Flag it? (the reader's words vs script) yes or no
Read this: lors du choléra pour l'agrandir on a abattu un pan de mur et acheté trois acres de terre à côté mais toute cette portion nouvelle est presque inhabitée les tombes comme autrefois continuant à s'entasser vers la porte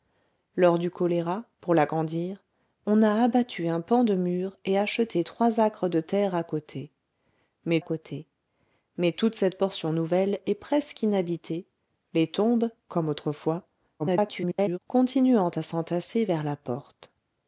yes